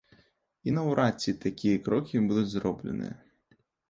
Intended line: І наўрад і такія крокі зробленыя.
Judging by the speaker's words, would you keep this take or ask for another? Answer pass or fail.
fail